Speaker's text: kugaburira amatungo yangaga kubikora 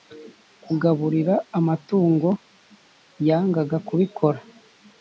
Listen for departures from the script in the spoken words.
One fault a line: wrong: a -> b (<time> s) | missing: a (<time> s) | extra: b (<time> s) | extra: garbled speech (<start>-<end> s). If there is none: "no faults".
no faults